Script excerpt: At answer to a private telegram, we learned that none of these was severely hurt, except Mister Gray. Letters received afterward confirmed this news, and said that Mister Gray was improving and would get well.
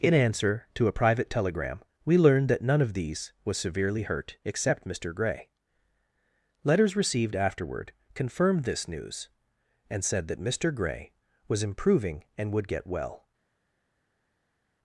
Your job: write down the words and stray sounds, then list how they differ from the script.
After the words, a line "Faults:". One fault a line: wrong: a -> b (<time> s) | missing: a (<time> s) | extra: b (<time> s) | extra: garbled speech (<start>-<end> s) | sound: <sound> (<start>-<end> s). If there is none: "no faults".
In answer to a private telegram, we learned that none of these was severely hurt, except Mister Gray. Letters received afterward confirmed this news, and said that Mister Gray was improving and would get well.
Faults:
wrong: At -> In (0.0 s)